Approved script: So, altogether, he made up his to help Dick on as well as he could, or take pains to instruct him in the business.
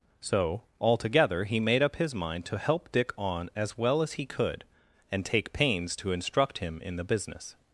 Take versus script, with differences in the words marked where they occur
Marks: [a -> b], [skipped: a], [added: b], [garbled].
So, altogether, he made up his [added: mind] to help Dick on as well as he could, [or -> and] take pains to instruct him in the business.